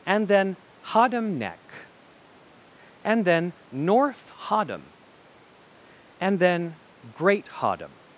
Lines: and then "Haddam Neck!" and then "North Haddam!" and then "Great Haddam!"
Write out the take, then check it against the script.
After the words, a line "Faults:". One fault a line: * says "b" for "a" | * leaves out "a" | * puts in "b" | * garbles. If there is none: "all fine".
and then "Haddam Neck!" and then "North Haddam!" and then "Great Haddam!"
Faults:
all fine